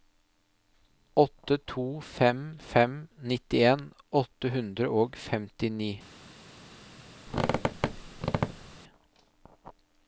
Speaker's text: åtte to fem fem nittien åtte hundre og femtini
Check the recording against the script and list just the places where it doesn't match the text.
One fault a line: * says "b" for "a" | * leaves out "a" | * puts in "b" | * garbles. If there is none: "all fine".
all fine